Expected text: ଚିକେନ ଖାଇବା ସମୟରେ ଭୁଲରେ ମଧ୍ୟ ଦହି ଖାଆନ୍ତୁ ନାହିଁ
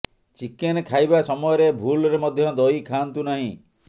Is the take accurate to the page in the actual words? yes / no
yes